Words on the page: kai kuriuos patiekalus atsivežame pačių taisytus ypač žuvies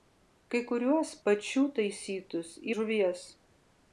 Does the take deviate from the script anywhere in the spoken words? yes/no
yes